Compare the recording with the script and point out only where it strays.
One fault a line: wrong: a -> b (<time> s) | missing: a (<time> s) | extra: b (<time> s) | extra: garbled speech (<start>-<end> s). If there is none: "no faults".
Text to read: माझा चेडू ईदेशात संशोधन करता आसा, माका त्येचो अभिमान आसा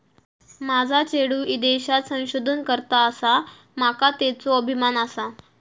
no faults